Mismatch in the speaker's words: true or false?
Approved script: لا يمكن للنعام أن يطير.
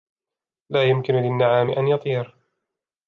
false